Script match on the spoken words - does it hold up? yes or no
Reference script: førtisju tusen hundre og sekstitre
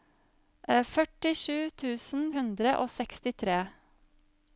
yes